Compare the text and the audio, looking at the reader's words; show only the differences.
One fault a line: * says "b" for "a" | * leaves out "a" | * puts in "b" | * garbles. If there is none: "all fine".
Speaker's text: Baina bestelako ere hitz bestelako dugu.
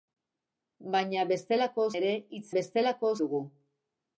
all fine